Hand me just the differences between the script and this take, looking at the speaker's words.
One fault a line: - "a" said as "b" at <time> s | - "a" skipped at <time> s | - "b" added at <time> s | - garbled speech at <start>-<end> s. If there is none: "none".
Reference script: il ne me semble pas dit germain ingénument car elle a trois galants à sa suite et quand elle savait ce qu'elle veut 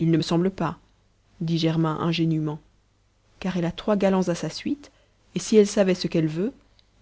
- "quand" said as "si" at 5.4 s